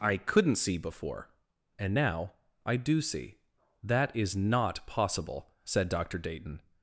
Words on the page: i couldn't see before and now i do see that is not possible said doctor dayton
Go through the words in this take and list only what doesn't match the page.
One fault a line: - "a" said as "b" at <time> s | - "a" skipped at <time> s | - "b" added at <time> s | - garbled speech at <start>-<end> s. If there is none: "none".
none